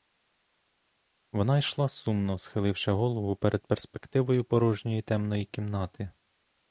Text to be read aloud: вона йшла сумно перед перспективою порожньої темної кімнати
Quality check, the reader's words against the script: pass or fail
fail